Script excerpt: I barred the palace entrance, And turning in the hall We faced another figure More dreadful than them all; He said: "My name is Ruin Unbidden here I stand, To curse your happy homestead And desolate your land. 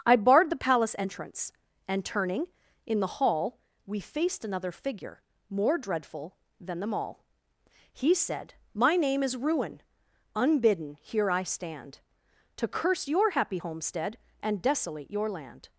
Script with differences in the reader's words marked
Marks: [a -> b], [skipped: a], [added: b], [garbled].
I barred the palace entrance, And turning in the hall We faced another figure More dreadful than them all; He said: "My name is Ruin Unbidden here I stand, To curse your happy homestead And desolate your land.